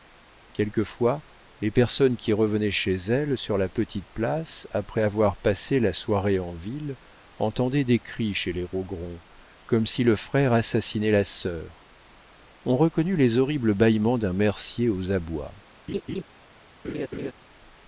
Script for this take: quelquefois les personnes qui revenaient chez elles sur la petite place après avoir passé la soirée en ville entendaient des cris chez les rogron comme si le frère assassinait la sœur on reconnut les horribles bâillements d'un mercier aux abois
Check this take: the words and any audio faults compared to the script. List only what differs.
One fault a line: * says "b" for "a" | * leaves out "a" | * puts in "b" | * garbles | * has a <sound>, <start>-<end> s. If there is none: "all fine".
* has a laugh, 15.9-16.2 s
* has a laugh, 16.8-17.3 s